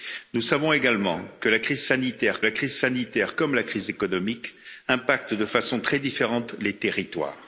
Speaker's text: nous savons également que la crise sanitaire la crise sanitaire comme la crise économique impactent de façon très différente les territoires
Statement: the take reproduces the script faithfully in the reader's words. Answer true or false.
true